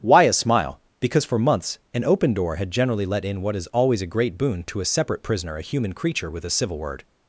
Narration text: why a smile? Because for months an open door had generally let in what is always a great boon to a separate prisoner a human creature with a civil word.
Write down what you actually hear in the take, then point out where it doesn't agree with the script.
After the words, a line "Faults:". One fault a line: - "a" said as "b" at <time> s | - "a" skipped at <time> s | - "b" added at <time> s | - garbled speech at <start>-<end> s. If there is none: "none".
why a smile? Because for months an open door had generally let in what is always a great boon to a separate prisoner a human creature with a civil word.
Faults:
none